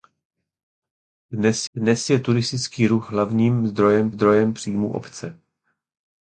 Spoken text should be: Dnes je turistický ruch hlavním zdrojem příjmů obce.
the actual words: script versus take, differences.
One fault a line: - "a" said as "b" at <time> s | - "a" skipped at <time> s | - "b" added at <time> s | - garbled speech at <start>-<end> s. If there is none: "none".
- "dnes" added at 1.7 s
- "zdrojem" added at 4.1 s